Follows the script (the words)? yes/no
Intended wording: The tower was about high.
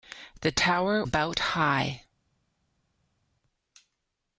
no